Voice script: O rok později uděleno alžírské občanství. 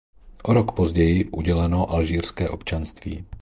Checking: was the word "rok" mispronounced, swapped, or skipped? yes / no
no